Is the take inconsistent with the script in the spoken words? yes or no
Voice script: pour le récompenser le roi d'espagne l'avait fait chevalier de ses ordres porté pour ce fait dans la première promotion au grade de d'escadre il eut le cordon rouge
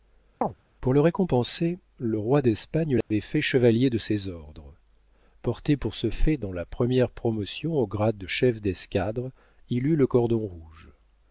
yes